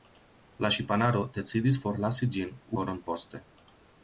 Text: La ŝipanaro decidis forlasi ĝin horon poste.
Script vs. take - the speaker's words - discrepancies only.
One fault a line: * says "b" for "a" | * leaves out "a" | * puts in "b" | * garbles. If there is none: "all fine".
all fine